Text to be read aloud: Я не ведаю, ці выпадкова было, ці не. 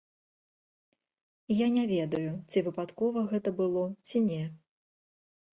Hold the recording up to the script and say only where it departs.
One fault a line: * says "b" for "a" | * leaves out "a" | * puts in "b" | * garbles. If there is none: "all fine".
* puts in "гэта"